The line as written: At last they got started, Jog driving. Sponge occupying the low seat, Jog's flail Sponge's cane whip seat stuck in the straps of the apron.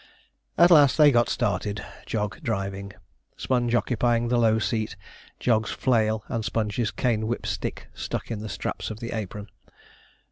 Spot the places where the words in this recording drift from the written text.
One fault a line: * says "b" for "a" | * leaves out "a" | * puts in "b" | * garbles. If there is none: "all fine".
* puts in "and"
* says "stick" for "seat"